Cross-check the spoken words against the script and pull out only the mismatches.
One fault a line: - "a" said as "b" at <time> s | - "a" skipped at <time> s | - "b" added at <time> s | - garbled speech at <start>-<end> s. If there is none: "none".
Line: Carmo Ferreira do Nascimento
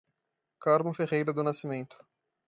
none